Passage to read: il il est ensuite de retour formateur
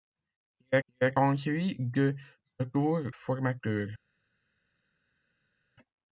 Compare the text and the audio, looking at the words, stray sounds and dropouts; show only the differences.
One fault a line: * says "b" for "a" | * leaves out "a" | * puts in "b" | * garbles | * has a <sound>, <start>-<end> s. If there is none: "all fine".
all fine